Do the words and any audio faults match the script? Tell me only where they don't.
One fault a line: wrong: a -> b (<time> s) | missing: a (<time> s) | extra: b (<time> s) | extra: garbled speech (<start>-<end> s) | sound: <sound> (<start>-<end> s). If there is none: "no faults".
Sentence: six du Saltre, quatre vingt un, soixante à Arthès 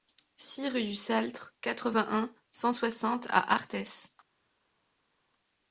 extra: rue (0.7 s)
extra: cent (2.5 s)